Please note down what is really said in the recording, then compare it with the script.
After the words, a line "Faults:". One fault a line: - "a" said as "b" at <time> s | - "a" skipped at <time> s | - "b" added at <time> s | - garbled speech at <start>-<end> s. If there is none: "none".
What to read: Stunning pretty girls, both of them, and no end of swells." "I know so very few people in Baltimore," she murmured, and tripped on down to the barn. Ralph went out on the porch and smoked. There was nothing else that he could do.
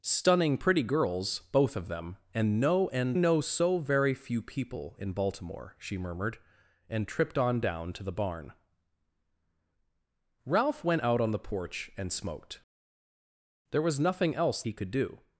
Stunning pretty girls, both of them, and no end know so very few people in Baltimore," she murmured, and tripped on down to the barn. Ralph went out on the porch and smoked. There was nothing else he could do.
Faults:
- "of swells I" skipped at 3.2 s
- "that" skipped at 14.6 s